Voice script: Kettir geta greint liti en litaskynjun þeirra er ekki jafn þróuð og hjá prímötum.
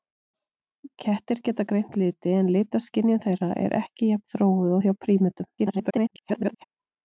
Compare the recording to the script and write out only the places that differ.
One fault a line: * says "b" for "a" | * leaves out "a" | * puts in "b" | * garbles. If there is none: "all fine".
* garbles